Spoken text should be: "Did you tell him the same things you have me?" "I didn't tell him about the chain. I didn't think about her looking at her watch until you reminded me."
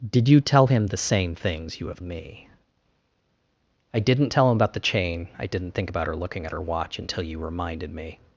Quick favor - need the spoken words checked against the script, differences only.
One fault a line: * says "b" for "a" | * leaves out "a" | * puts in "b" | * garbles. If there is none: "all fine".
all fine